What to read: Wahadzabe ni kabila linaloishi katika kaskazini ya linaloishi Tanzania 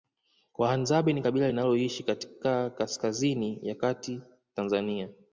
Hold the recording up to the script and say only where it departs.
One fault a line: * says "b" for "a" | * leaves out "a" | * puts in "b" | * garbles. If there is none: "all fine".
* says "kati" for "linaloishi"